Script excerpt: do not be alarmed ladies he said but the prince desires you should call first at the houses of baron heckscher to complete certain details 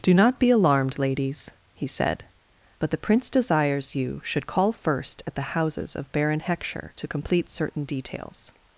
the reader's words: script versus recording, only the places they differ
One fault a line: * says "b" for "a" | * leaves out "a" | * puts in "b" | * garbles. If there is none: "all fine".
all fine